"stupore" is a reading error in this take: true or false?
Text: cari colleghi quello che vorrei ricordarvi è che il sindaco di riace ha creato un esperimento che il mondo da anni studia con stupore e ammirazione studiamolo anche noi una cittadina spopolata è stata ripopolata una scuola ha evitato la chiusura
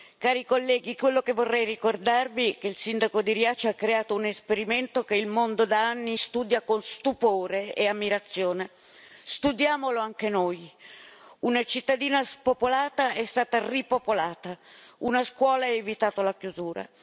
false